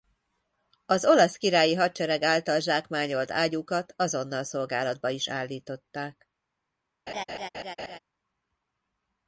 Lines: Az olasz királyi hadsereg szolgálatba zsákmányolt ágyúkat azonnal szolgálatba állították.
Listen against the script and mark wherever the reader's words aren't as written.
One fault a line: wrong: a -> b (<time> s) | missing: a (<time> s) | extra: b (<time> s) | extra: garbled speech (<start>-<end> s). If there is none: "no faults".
wrong: szolgálatba -> által (2.2 s)
extra: is (5.1 s)